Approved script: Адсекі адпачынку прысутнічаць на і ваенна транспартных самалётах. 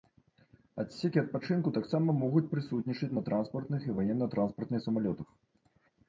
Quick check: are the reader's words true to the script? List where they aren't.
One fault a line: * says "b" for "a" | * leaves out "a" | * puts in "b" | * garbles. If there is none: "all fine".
* puts in "таксама могуць"
* puts in "транспартных"